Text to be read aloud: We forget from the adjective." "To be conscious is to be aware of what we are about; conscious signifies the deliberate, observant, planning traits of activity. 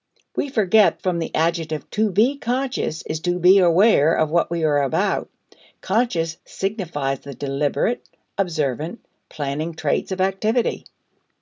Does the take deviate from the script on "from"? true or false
false